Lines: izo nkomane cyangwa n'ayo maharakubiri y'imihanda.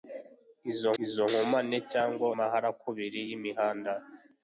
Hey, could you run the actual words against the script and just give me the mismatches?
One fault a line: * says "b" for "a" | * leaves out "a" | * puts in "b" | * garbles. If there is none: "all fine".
* puts in "izo"
* leaves out "n'ayo"